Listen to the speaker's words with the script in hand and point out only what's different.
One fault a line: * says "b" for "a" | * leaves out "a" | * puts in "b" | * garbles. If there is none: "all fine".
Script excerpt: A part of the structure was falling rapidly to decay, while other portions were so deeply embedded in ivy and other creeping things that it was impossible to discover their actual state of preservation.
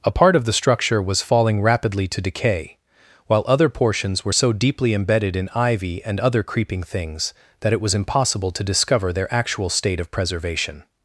all fine